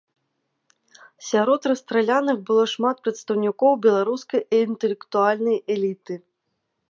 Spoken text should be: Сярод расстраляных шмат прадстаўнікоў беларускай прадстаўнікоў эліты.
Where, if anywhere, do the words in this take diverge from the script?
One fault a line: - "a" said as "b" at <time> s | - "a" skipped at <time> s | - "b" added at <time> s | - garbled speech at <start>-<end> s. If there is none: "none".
- "было" added at 2.5 s
- "прадстаўнікоў" said as "інтэлектуальнай" at 4.6 s